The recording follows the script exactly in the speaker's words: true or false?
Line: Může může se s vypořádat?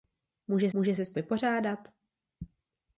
true